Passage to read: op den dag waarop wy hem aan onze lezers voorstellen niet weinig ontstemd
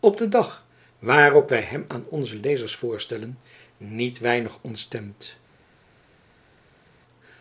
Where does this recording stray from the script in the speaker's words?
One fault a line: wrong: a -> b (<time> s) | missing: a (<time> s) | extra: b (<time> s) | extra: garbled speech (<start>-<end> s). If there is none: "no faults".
no faults